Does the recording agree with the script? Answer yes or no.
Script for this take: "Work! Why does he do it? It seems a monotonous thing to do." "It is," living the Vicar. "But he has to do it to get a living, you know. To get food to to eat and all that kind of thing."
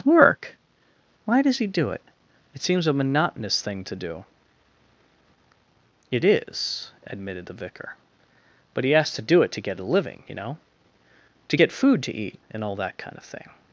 no